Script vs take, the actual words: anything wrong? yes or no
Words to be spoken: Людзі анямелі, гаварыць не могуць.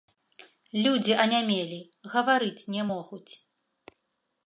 no